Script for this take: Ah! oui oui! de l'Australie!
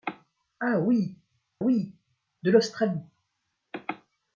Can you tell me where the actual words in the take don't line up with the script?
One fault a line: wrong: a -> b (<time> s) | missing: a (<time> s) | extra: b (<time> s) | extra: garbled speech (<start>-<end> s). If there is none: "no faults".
no faults